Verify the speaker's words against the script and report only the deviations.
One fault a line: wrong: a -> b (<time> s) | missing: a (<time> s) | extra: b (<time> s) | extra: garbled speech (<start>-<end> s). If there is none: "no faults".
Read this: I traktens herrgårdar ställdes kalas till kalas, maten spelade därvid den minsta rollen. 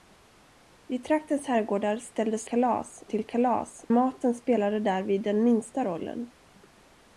no faults